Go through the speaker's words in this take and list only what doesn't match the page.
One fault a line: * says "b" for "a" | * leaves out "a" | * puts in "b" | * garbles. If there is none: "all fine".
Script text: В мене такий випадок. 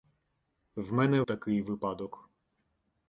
all fine